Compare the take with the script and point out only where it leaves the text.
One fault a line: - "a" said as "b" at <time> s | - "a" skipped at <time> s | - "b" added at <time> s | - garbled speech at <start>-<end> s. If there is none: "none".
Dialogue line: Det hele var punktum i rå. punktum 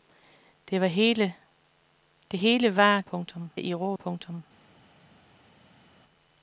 none